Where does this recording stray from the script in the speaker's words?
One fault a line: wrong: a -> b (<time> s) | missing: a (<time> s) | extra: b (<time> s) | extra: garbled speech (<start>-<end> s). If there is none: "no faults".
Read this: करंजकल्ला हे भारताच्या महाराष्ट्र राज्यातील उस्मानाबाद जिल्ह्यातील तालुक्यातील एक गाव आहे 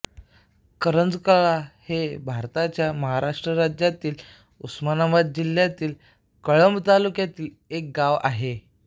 extra: कळंब (6.5 s)